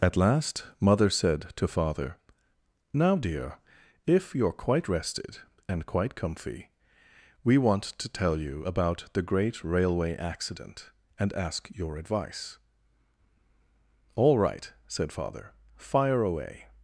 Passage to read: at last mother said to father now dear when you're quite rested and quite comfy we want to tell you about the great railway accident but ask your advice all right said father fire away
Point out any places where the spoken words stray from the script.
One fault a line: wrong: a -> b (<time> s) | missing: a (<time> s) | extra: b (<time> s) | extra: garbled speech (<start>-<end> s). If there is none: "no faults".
wrong: when -> if (4.1 s)
wrong: but -> and (11.2 s)